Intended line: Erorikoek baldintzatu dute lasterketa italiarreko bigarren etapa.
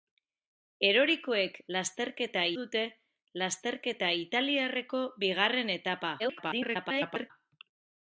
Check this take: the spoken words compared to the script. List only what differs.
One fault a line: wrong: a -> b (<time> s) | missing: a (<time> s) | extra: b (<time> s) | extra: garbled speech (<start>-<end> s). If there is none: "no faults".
wrong: baldintzatu -> lasterketa (1.8 s)
extra: garbled speech (6.2-7.3 s)